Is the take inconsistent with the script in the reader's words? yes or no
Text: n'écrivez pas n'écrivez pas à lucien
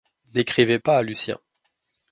yes